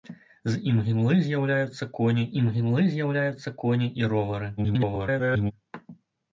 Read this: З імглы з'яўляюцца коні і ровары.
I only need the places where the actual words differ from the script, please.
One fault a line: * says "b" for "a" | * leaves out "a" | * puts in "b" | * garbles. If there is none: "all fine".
* puts in "імглы з'яўляюцца коні"
* garbles